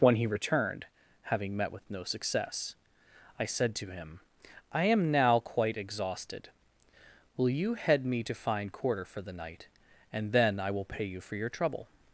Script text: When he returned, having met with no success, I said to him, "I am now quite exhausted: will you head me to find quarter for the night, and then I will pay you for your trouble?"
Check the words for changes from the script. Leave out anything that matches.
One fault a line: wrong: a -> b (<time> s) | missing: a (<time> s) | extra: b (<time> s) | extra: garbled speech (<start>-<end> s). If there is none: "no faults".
no faults